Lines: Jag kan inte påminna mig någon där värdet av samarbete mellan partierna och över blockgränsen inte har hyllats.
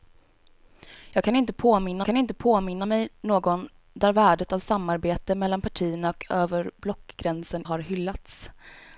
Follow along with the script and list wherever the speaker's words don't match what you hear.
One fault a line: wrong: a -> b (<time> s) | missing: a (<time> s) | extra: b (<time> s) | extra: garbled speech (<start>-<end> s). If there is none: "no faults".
extra: kan inte påminna (2.0 s)
missing: inte (7.6 s)